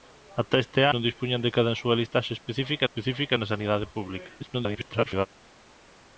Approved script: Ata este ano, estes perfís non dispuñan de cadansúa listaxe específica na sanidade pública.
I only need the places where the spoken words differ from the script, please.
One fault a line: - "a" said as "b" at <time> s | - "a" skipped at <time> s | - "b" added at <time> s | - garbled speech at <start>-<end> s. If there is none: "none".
- "ano estes perfís" skipped at 0.8 s
- "específica" added at 2.9 s
- garbled speech at 4.4-5.3 s